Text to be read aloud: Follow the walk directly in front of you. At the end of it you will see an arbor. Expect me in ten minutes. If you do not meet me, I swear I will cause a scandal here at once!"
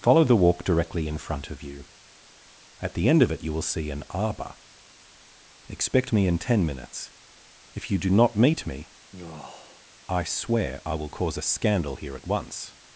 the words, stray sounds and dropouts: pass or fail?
fail